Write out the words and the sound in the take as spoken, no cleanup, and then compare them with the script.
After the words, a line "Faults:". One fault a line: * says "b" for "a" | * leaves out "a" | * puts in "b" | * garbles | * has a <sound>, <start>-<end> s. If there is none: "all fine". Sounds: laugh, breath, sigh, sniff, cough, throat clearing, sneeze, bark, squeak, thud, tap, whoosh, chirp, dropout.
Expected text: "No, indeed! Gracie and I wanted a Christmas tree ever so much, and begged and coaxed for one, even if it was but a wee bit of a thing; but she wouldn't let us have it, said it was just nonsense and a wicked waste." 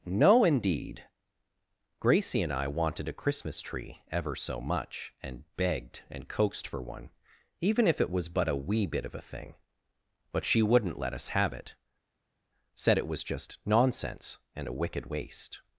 "No, indeed! Gracie and I wanted a Christmas tree ever so much, and begged and coaxed for one, even if it was but a wee bit of a thing; but she wouldn't let us have it, said it was just nonsense and a wicked waste."
Faults:
all fine